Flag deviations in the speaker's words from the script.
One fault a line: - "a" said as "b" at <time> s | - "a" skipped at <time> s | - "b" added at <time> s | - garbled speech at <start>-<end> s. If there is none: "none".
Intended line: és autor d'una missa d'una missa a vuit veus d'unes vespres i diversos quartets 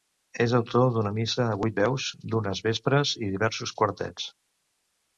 - "d'una missa" skipped at 1.4 s